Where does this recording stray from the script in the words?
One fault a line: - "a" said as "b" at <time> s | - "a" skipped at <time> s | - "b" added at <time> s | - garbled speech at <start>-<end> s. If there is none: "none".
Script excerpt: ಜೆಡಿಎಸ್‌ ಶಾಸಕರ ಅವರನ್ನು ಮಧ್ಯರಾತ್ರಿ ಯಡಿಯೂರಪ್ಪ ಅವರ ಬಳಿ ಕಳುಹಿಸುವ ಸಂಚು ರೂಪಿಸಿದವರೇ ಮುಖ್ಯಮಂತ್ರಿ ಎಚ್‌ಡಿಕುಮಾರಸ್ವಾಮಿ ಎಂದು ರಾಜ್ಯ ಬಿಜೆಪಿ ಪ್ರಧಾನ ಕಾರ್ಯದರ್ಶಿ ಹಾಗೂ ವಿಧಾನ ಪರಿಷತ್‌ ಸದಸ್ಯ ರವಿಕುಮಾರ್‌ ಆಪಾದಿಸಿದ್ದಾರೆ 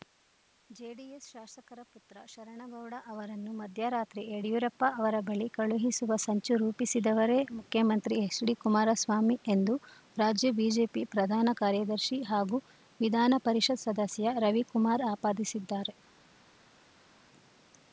- "ಪುತ್ರ ಶರಣಗೌಡ" added at 1.9 s